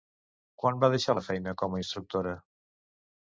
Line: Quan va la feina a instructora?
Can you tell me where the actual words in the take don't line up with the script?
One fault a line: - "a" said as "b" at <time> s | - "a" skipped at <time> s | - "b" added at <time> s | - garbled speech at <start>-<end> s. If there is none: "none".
- "deixar" added at 0.9 s
- "com" added at 1.6 s